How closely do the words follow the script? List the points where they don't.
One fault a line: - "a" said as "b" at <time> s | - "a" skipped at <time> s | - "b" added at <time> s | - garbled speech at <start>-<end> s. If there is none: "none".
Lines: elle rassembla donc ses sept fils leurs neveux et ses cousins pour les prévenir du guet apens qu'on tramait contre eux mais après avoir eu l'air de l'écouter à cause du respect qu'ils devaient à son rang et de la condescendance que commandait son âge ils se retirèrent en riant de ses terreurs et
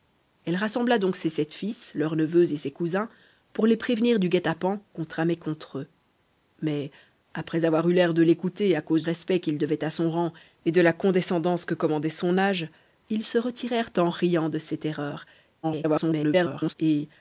- "du" skipped at 9.0 s
- garbled speech at 15.6-16.7 s